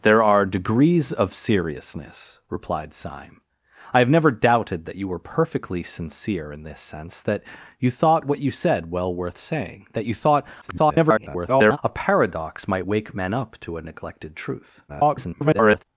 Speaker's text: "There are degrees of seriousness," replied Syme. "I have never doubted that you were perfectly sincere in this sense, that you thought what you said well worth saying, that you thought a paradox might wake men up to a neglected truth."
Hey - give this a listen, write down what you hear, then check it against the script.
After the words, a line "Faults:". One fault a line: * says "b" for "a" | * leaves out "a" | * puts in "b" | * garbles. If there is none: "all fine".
"There are degrees of seriousness," replied Syme. "I have never doubted that you were perfectly sincere in this sense, that you thought what you said well worth saying, that you thought [garbled] a paradox might wake men up to a neglected truth." [garbled]
Faults:
* garbles
* garbles